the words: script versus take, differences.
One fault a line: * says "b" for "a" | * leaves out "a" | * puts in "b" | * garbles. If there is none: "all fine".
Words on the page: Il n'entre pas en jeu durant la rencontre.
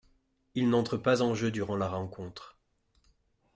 all fine